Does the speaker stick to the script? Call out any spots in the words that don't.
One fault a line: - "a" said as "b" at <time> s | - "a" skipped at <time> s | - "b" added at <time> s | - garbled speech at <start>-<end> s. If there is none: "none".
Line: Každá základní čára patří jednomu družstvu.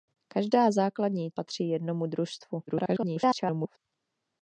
- "čára" skipped at 1.3 s
- garbled speech at 2.7-3.8 s